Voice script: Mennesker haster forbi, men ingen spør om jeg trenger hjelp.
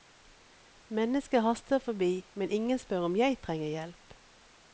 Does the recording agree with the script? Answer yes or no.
yes